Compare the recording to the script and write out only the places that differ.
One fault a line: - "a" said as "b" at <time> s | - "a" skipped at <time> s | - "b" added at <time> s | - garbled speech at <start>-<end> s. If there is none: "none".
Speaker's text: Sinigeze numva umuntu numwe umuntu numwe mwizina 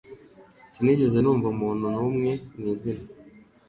- "umuntu numwe" skipped at 2.3 s